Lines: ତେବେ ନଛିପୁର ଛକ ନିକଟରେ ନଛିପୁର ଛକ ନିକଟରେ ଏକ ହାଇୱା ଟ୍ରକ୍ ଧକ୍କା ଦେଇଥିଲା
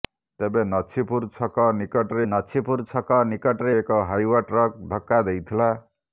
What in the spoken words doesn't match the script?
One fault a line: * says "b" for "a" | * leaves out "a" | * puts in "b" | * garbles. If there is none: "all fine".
all fine